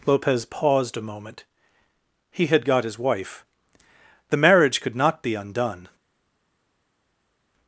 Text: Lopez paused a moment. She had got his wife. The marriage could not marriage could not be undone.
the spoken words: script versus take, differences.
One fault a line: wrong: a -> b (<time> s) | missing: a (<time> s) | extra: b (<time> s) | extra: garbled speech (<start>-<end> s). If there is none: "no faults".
wrong: She -> He (2.3 s)
missing: marriage could not (5.2 s)